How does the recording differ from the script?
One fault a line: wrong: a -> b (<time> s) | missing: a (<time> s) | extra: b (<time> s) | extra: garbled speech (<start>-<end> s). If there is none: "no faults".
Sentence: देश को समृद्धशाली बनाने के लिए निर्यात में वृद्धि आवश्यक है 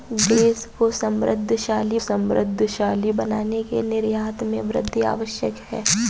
extra: समृद्धशाली (2.0 s)
missing: लिए (3.8 s)